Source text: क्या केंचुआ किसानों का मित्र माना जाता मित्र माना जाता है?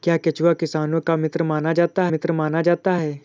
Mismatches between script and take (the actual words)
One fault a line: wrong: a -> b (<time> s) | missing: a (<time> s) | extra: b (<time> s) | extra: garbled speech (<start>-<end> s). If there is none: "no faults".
no faults